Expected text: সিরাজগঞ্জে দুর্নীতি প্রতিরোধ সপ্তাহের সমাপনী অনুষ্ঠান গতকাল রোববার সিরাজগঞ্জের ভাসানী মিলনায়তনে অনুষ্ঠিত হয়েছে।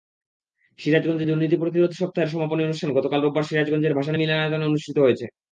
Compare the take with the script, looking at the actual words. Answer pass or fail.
pass